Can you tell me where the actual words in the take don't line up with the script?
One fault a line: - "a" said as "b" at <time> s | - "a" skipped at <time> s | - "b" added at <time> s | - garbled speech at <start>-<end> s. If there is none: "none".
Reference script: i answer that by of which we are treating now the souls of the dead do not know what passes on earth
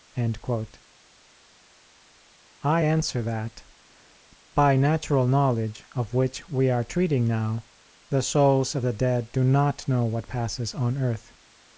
- "natural knowledge" added at 4.8 s